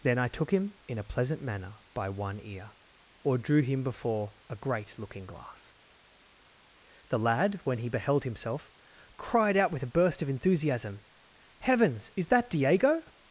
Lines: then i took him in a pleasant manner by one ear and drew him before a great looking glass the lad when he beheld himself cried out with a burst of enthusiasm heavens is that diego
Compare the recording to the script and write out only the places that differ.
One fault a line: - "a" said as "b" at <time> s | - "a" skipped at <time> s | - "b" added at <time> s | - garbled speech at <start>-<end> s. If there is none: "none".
- "and" said as "or" at 3.2 s